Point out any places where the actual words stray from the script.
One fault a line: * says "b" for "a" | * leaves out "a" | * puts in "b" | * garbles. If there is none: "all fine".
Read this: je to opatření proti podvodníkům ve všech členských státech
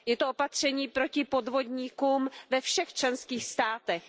all fine